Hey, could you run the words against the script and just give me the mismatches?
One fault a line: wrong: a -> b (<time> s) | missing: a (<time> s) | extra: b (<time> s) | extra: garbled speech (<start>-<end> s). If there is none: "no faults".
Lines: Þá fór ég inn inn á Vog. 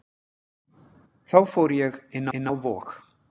no faults